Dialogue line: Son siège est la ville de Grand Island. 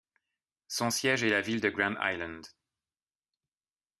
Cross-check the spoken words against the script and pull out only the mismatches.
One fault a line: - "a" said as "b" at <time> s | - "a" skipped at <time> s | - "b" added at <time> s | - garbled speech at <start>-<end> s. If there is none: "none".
none